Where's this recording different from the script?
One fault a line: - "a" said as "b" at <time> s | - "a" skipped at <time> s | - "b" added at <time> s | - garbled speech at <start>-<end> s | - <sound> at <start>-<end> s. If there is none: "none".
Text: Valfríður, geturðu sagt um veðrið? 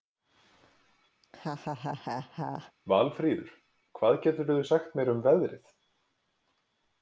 - laugh at 1.2-2.7 s
- "hvað" added at 4.0 s
- "mér" added at 5.0 s